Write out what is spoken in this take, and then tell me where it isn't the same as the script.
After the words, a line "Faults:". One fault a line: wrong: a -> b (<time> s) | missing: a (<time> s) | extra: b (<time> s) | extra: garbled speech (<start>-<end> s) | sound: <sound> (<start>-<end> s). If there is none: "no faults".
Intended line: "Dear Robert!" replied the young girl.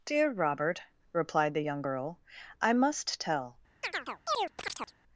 "Dear Robert!" replied the young girl. "I must tell
Faults:
extra: I must tell (2.6 s)
sound: chirp (3.8-4.9 s)